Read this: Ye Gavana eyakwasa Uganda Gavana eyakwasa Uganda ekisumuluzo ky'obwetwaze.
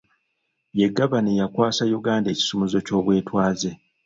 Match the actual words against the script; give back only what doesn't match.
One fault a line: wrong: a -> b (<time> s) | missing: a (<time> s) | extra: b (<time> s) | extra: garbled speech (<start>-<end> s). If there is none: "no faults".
missing: Gavana eyakwasa Uganda (2.3 s)